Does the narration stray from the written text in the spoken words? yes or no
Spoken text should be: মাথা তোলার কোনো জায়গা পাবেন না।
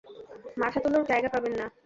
yes